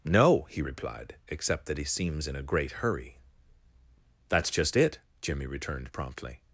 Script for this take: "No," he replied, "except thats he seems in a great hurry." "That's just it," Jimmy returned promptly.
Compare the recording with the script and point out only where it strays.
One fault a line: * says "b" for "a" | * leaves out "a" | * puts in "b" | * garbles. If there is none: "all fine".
* says "that" for "thats"